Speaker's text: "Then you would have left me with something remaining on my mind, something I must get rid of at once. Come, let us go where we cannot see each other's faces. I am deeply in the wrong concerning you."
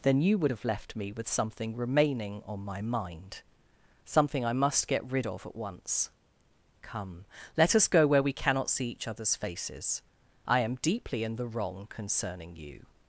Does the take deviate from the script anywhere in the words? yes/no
no